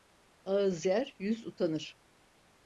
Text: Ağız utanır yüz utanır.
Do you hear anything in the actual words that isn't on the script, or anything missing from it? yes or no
yes